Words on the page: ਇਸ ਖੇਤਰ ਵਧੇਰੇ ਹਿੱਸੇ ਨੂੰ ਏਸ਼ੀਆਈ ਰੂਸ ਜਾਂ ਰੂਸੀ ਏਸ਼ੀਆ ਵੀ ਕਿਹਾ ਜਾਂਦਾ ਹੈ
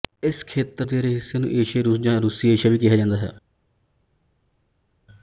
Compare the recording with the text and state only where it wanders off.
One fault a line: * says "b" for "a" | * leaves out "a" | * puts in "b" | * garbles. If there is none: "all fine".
all fine